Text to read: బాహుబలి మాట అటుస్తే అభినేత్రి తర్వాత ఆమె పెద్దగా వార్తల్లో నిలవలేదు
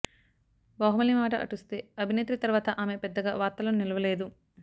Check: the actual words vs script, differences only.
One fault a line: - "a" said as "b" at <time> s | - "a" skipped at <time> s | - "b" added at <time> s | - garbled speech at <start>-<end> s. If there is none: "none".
none